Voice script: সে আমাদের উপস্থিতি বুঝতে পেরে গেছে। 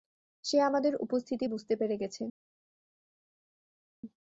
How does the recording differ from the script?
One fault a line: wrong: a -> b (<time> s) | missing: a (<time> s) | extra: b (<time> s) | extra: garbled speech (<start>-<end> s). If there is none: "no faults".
no faults